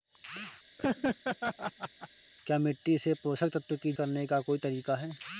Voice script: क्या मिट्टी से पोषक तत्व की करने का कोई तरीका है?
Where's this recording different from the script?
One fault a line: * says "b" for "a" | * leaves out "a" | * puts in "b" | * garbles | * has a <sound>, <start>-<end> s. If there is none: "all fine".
* has a laugh, 0.8-2.1 s